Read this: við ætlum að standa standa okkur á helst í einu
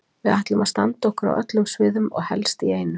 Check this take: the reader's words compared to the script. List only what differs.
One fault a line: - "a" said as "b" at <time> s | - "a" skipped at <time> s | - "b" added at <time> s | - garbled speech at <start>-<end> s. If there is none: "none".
- "standa" skipped at 1.1 s
- "öllum sviðum og" added at 1.4 s